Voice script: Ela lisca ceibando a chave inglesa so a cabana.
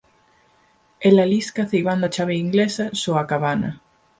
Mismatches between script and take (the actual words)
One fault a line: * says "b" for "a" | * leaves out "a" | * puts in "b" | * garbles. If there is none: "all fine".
all fine